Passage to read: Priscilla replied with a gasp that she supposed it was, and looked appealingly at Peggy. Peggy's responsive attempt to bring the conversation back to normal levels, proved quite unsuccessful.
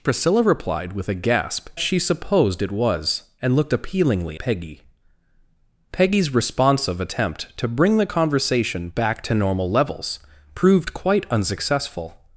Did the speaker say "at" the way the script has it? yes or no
no